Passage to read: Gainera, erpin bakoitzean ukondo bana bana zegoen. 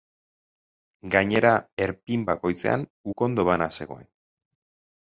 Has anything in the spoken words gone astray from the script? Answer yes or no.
yes